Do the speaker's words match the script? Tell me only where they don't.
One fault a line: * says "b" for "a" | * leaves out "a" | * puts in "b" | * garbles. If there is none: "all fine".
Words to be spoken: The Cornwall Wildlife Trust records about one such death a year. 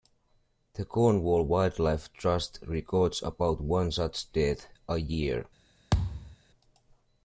all fine